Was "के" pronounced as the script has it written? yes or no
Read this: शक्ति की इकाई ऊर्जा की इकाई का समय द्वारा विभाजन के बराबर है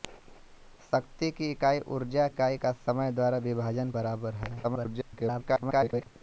no